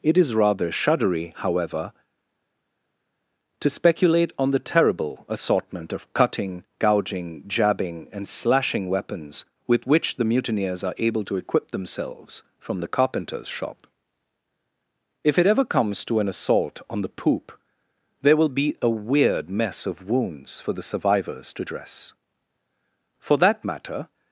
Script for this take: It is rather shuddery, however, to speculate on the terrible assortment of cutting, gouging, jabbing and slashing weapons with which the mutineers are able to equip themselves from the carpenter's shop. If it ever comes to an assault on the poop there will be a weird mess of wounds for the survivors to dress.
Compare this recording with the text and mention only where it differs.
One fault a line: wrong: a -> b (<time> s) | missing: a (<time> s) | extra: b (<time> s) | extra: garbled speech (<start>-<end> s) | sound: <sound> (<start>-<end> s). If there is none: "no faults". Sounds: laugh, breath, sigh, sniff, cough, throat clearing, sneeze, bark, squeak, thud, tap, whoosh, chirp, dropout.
extra: For that matter (23.2 s)